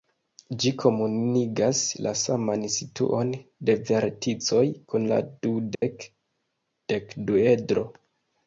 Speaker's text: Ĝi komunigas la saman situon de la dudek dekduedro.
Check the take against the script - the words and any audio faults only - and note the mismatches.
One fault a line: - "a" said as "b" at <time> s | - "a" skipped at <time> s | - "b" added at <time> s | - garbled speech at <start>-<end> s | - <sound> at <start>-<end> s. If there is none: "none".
- "verticoj kun" added at 3.9 s
- dropout at 5.7-5.8 s